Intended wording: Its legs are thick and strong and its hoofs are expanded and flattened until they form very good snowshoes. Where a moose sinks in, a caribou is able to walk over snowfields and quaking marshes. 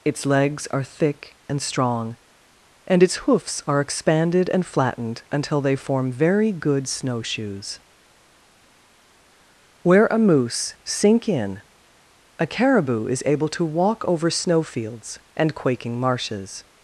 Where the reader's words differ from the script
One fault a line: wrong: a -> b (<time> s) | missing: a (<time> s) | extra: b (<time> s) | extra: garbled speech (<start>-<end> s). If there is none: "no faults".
wrong: sinks -> sink (10.8 s)